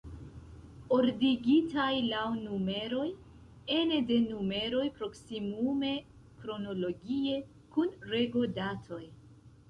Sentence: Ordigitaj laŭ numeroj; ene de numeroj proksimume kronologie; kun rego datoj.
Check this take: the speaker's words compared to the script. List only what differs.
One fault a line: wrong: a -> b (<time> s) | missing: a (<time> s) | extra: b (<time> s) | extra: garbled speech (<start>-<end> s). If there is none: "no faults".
no faults